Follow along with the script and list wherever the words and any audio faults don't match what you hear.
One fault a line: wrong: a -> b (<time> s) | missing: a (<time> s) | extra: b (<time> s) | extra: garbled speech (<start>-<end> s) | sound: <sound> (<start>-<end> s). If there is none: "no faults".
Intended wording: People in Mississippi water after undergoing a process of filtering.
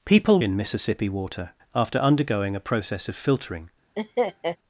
sound: laugh (4.0-4.6 s)